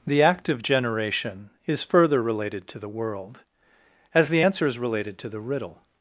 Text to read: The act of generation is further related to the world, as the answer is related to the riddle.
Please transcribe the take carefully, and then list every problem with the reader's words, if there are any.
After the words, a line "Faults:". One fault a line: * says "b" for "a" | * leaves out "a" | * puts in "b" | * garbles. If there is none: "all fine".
The act of generation is further related to the world, as the answer is related to the riddle.
Faults:
all fine